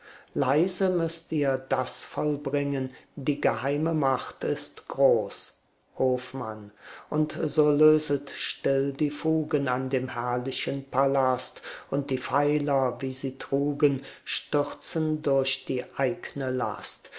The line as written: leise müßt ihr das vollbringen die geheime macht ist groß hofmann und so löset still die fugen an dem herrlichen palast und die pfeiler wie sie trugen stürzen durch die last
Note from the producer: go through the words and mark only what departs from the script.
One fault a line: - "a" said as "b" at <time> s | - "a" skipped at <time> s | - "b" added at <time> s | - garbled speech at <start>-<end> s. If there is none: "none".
- "eigne" added at 16.0 s